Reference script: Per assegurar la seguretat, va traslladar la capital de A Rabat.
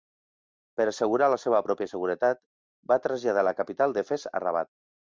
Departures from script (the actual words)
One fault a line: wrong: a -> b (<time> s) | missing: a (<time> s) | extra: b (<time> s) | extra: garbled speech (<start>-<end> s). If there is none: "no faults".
extra: seva pròpia (1.4 s)
extra: Fes (4.1 s)